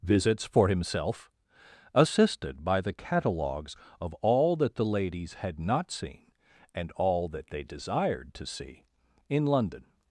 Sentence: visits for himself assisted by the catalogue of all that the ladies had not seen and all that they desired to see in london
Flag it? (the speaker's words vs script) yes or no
yes